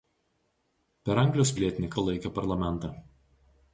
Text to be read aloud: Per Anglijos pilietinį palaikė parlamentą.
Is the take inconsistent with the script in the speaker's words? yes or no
no